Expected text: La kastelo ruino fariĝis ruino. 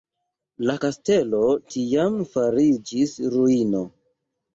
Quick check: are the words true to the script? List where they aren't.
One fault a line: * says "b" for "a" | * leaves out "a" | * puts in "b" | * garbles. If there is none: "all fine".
* says "tiam" for "ruino"